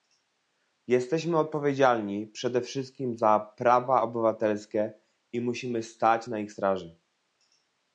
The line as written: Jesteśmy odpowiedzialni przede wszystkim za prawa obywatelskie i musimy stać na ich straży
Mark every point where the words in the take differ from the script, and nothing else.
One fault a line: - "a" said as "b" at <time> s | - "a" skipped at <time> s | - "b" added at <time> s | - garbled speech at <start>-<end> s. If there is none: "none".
none